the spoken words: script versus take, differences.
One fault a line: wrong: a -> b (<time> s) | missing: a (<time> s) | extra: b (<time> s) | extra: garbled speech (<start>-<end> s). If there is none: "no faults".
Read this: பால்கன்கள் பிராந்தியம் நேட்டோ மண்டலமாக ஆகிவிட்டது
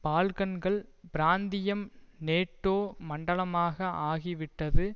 no faults